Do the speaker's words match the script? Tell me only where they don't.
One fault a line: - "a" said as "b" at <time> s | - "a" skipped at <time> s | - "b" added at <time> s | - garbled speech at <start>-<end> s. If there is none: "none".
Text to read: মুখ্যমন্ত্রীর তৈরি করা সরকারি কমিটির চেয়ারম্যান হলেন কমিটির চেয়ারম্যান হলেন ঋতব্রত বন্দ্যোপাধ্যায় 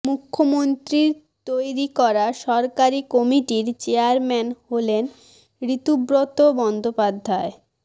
- "কমিটির চেয়ারম্যান হলেন" skipped at 5.0 s